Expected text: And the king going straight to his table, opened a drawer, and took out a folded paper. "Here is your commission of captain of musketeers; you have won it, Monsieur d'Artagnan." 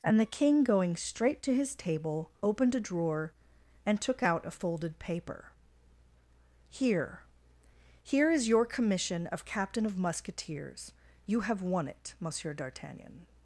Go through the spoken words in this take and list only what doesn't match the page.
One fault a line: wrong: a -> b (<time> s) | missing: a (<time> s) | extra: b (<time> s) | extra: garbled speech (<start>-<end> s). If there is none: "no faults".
extra: Here (8.0 s)